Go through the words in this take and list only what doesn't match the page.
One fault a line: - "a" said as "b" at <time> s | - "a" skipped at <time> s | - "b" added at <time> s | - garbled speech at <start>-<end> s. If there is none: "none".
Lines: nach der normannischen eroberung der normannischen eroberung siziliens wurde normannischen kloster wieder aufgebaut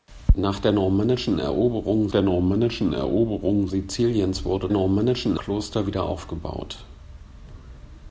none